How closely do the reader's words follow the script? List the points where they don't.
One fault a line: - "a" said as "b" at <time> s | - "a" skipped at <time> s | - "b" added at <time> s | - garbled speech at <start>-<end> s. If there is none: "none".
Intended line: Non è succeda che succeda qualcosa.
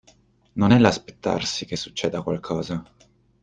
- "succeda" said as "l'aspettarsi" at 0.8 s